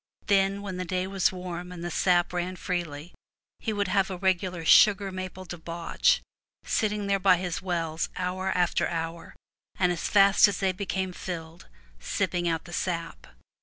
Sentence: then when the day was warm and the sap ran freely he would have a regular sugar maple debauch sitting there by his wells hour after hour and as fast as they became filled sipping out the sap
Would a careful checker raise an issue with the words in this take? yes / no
no